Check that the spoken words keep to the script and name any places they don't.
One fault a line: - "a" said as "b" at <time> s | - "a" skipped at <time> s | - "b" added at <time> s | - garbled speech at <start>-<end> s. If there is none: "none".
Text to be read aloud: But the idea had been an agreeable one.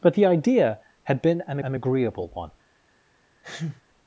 - "an" added at 1.6 s